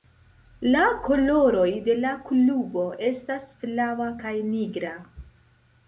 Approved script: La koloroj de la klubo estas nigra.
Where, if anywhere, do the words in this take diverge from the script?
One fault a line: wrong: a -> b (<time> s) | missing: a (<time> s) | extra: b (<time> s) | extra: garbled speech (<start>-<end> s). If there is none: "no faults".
extra: flava kaj (3.6 s)